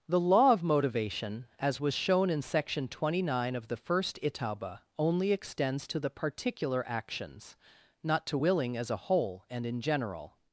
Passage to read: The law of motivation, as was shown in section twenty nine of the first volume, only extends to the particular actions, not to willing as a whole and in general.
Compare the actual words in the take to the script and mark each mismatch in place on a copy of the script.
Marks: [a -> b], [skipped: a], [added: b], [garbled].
The law of motivation, as was shown in section twenty nine of the first [volume, -> itauba] only extends to the particular actions, not to willing as a whole and in general.